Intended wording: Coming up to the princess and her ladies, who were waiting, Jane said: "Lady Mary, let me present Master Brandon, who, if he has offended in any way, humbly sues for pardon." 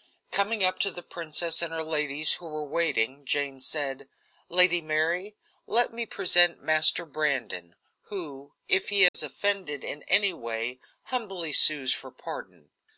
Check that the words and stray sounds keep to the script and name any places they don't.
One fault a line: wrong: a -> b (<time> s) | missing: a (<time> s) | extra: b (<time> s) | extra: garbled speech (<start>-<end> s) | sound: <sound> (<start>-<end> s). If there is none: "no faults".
sound: dropout (9.1-9.1 s)